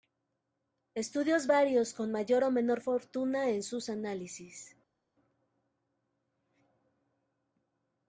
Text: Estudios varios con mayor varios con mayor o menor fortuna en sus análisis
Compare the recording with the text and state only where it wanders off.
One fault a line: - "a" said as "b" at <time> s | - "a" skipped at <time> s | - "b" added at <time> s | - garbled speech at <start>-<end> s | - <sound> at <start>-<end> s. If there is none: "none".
- "varios con mayor" skipped at 2.4 s